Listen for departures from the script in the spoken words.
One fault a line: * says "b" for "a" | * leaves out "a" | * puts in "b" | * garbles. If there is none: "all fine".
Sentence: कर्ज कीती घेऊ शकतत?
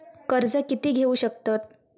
all fine